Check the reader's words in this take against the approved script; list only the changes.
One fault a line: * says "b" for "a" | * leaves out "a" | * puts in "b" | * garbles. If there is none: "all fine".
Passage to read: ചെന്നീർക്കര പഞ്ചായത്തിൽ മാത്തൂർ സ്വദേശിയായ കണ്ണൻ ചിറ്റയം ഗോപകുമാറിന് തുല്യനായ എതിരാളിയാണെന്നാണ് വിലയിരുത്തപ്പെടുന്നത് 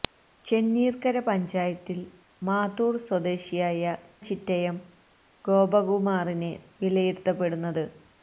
* leaves out "കണ്ണൻ"
* leaves out "തുല്യനായ എതിരാളിയാണെന്നാണ്"